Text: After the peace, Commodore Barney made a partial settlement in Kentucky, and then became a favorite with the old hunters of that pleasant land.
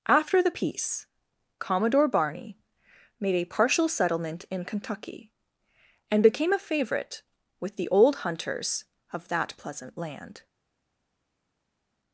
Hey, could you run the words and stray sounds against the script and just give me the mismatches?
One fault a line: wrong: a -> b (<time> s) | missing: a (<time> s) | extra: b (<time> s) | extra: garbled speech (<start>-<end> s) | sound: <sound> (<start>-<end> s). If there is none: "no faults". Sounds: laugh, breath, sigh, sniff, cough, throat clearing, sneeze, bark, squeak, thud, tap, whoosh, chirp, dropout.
missing: then (6.2 s)